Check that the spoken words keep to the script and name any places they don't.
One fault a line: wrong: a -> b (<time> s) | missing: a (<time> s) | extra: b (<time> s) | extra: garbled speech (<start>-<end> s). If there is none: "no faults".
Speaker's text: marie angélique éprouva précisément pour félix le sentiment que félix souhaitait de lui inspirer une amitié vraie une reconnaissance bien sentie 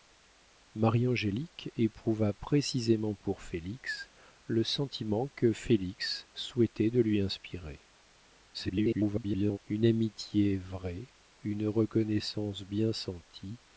extra: garbled speech (8.5-9.6 s)